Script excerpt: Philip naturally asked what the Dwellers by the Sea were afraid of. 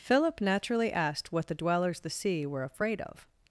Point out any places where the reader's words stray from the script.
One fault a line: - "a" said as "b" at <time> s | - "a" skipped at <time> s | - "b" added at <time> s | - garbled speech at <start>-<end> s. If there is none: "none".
- "by" skipped at 2.0 s